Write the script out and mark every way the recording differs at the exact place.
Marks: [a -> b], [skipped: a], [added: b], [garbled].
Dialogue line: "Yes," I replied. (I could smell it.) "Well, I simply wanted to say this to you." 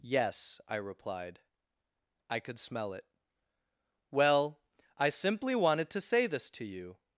"Yes," I replied. (I could smell it.) "Well, I simply wanted to say this to you."